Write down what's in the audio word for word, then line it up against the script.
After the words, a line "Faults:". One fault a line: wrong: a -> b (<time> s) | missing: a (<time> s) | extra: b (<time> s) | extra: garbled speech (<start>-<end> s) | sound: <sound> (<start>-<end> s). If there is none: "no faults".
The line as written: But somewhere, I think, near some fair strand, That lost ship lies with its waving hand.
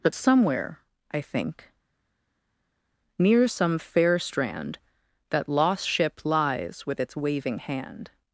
But somewhere, I think, near some fair strand, That lost ship lies with its waving hand.
Faults:
no faults